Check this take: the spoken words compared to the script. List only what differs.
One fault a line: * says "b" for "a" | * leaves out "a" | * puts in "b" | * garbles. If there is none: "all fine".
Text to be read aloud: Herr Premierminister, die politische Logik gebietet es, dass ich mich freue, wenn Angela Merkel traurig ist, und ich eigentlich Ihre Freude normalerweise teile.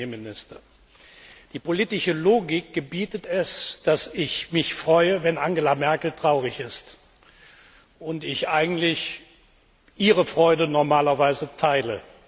all fine